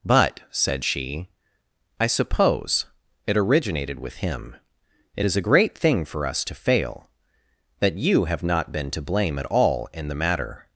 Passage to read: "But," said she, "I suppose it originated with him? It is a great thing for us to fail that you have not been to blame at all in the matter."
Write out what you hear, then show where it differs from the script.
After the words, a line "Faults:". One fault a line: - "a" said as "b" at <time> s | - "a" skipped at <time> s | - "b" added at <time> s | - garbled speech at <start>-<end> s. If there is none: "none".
"But," said she, "I suppose it originated with him? It is a great thing for us to fail that you have not been to blame at all in the matter."
Faults:
none